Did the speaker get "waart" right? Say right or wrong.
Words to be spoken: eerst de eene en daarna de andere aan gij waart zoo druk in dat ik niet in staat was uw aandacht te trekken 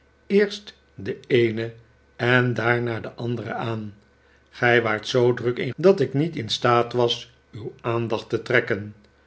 right